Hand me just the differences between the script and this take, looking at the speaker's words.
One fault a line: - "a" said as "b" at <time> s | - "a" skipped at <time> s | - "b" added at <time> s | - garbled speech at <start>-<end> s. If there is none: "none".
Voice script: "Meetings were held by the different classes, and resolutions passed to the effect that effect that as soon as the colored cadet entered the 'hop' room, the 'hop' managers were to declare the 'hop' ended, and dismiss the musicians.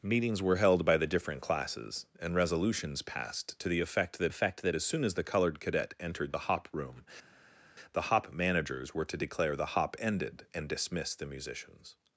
none